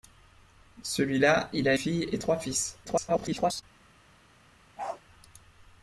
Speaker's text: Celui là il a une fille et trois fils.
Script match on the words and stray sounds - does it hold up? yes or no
no